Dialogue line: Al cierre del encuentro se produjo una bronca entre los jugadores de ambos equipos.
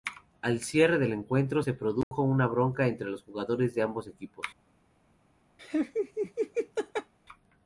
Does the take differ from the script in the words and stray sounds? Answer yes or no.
yes